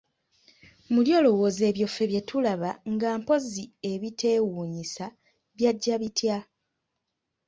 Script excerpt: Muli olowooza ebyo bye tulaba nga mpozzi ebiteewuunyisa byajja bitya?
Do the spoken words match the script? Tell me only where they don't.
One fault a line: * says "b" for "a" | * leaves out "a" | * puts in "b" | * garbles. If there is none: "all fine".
* puts in "ffe"